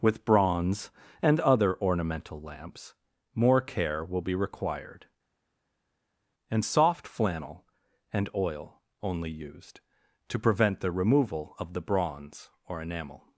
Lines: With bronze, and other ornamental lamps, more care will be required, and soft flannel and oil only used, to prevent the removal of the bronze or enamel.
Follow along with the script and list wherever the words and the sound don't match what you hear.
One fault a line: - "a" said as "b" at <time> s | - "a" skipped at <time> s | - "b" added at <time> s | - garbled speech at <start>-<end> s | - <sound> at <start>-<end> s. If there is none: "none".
none